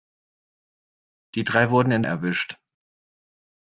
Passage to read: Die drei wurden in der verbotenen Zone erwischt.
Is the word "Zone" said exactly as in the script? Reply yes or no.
no